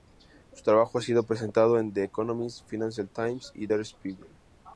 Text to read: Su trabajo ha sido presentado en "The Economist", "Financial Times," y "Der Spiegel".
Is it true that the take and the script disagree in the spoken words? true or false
false